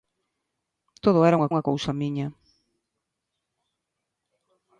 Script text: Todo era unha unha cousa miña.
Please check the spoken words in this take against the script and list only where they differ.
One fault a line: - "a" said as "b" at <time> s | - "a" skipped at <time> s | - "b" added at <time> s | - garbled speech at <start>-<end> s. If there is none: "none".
none